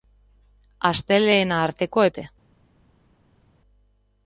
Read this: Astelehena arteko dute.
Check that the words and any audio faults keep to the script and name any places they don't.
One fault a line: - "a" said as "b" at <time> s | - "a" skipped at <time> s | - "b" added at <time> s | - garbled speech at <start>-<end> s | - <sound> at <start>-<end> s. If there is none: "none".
none